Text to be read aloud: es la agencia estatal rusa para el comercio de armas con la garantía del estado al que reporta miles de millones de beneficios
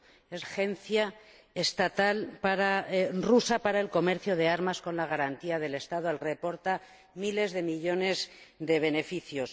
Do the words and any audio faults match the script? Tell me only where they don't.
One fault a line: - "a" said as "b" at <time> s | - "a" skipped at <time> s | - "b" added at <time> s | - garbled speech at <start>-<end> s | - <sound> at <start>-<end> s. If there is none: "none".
- "la" skipped at 0.5 s
- "que" skipped at 6.2 s